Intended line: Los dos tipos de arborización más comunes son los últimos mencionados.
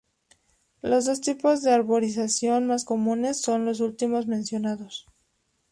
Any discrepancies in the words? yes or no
no